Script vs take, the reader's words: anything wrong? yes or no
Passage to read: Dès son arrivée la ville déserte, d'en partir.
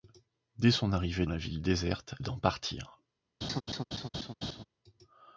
no